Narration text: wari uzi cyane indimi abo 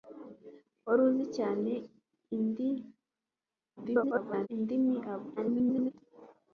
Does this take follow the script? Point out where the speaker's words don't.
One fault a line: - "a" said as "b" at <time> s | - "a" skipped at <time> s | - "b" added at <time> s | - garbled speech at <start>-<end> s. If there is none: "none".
- garbled speech at 3.8-4.5 s
- garbled speech at 5.4-5.9 s